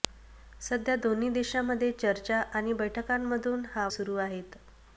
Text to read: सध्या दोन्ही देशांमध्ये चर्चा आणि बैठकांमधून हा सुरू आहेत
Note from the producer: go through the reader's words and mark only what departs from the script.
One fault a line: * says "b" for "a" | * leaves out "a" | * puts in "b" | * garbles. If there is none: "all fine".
all fine